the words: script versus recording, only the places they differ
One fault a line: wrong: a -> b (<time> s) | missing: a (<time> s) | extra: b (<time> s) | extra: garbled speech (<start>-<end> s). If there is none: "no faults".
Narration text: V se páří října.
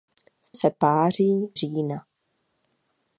no faults